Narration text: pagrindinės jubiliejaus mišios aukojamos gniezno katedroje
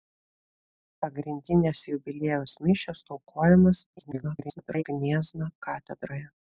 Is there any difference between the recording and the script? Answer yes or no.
yes